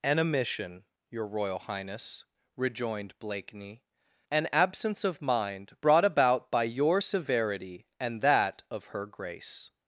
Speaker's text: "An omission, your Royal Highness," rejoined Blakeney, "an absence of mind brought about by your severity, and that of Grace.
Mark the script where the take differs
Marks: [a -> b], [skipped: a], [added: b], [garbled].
"An omission, your Royal Highness," rejoined Blakeney, "an absence of mind brought about by your severity, and that of [added: Her] Grace.